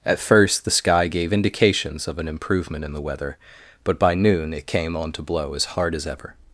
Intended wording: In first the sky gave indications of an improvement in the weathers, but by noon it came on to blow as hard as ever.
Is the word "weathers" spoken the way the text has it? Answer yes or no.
no